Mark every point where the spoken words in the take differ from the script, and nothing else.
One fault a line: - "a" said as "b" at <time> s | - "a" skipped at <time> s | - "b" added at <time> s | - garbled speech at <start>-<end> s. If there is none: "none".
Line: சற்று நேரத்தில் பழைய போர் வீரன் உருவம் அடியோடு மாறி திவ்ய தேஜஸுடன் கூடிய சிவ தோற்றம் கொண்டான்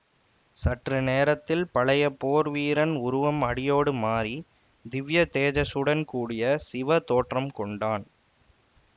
none